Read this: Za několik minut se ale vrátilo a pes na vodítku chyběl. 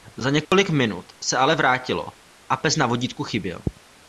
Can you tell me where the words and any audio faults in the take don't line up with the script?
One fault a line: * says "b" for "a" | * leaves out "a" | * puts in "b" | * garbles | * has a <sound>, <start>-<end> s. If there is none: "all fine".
* has a dropout, 0.4-0.5 s